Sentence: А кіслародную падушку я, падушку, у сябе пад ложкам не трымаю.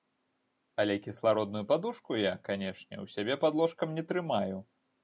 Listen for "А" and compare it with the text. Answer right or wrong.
wrong